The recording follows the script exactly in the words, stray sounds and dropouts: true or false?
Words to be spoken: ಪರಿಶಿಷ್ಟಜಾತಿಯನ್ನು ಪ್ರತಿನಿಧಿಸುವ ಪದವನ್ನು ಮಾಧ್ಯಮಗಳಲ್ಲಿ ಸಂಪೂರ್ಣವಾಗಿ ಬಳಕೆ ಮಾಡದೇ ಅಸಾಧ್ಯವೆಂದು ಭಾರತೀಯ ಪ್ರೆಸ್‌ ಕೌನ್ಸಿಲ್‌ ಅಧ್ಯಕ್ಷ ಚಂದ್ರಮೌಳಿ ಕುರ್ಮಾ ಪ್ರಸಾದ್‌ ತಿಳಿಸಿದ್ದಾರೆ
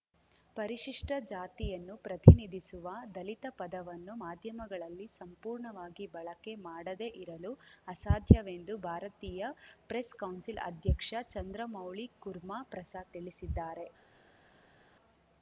false